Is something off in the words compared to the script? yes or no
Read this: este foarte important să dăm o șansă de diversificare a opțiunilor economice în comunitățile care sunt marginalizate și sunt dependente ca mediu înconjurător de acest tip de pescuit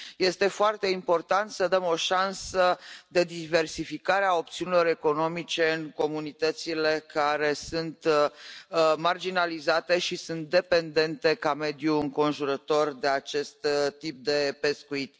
no